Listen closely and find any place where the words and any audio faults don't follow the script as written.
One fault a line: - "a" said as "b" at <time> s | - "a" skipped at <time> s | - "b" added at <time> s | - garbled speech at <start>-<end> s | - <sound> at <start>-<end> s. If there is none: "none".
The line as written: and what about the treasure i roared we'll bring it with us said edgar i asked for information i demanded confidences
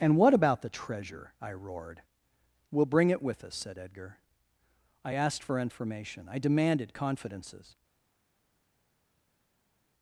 none